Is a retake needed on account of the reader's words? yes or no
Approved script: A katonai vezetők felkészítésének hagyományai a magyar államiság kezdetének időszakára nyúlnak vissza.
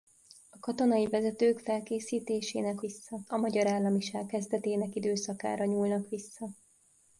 yes